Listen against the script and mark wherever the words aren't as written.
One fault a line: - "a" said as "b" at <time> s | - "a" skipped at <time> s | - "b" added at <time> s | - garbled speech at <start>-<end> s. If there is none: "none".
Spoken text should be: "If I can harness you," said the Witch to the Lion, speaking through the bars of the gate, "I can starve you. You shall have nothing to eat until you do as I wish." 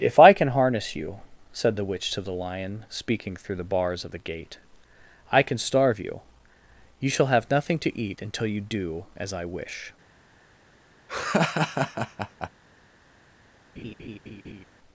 none